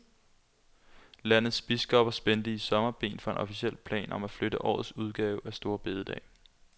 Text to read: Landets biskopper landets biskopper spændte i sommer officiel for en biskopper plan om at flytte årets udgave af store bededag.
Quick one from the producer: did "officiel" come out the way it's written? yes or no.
no